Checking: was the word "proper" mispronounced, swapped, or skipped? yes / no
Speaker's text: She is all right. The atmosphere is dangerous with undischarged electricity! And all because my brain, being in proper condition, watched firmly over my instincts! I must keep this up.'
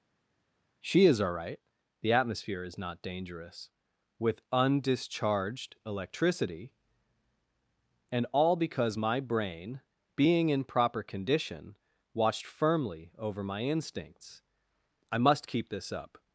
no